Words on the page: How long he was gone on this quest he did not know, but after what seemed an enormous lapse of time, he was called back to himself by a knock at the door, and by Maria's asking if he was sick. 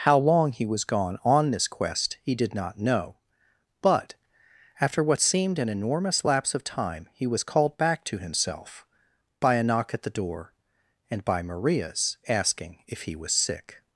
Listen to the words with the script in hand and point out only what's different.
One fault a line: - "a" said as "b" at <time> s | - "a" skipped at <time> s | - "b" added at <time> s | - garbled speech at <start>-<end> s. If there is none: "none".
none